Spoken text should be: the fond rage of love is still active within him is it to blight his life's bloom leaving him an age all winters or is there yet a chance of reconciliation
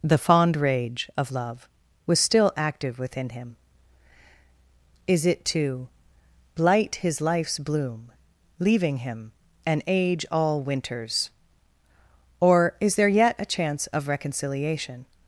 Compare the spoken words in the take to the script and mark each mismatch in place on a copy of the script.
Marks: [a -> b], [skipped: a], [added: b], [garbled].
the fond rage of love [is -> was] still active within him is it to blight his life's bloom leaving him an age all winters or is there yet a chance of reconciliation